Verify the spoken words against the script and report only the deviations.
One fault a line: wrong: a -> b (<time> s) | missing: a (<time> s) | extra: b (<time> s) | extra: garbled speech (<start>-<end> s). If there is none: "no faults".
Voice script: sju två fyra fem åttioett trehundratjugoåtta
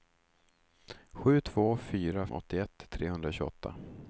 missing: fem (2.3 s)